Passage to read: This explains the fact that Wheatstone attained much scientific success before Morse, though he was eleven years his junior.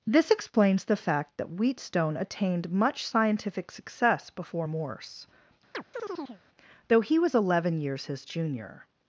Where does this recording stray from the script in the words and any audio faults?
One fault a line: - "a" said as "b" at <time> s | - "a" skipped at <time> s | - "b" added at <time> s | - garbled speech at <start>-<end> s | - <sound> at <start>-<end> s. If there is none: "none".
- chirp at 5.7-6.4 s